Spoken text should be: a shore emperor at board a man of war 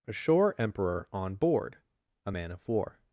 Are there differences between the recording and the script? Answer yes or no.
yes